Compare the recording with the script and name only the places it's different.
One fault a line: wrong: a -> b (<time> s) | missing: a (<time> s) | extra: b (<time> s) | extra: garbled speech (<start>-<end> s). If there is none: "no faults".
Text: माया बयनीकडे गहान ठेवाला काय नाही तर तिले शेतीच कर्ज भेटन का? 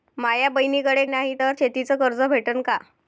missing: गहान ठेवाला काय (1.0 s)
missing: तिले (1.5 s)